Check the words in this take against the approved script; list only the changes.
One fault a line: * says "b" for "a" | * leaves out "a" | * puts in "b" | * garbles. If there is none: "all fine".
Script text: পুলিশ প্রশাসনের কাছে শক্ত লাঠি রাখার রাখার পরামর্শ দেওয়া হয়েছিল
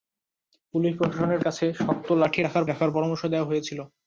all fine